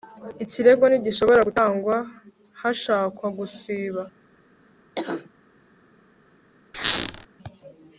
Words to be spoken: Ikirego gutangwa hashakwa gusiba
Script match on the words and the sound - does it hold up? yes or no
no